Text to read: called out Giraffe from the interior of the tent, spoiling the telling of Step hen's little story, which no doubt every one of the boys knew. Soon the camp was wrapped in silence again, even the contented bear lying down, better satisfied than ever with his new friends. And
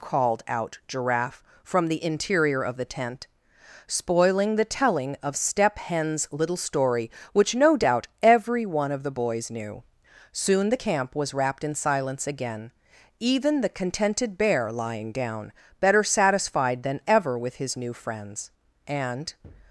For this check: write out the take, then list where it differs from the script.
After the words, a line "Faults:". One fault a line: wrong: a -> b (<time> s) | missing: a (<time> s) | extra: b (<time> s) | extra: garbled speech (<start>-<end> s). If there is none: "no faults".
called out Giraffe from the interior of the tent, spoiling the telling of Step hen's little story, which no doubt every one of the boys knew. Soon the camp was wrapped in silence again, even the contented bear lying down, better satisfied than ever with his new friends. And
Faults:
no faults